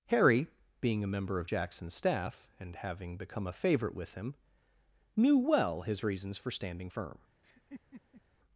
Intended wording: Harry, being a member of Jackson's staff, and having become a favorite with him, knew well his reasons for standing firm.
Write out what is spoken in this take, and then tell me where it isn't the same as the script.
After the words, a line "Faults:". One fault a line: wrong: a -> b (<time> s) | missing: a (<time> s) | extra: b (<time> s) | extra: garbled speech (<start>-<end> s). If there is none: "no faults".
Harry, being a member of Jackson's staff, and having become a favorite with him, knew well his reasons for standing firm.
Faults:
no faults